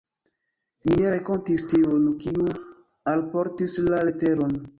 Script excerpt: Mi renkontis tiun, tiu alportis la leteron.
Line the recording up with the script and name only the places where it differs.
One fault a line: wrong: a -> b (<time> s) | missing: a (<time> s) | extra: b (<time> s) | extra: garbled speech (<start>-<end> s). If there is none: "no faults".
extra: ne (1.0 s)
wrong: tiu -> kiu (2.2 s)